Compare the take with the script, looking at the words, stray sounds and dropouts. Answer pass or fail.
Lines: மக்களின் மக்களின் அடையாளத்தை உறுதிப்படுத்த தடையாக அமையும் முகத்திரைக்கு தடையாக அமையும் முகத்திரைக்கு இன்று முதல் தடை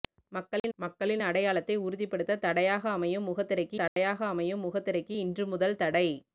fail